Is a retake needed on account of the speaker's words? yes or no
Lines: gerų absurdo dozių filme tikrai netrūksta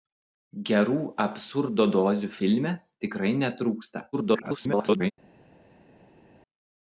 yes